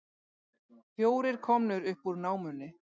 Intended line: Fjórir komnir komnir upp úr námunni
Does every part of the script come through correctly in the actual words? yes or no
no